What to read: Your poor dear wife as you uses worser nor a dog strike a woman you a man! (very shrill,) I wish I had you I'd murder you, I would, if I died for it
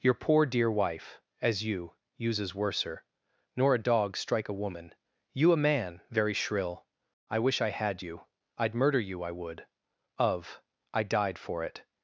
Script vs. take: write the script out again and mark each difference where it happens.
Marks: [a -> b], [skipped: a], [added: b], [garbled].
Your poor dear wife as you uses worser nor a dog strike a woman you a man! (very shrill,) I wish I had you I'd murder you, I would, [if -> of] I died for it